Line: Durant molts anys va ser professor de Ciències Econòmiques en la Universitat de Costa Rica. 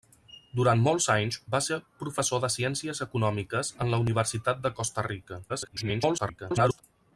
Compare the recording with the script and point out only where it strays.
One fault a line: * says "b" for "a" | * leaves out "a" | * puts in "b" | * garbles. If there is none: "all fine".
* garbles